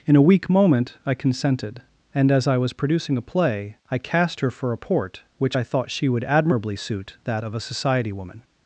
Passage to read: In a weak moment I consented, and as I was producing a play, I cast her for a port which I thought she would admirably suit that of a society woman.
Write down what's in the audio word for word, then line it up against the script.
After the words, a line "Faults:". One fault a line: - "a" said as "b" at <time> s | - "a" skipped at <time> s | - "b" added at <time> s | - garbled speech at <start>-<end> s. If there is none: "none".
In a weak moment I consented, and as I was producing a play, I cast her for a port which I thought she would admirably suit that of a society woman.
Faults:
none